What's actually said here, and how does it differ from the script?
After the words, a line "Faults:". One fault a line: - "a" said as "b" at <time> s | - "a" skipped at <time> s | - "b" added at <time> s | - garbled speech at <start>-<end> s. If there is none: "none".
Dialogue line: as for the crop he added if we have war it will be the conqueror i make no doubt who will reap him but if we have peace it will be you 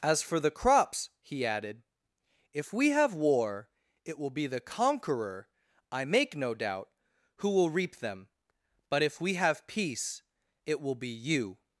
as for the crops he added if we have war it will be the conqueror i make no doubt who will reap them but if we have peace it will be you
Faults:
- "crop" said as "crops" at 0.5 s
- "him" said as "them" at 8.0 s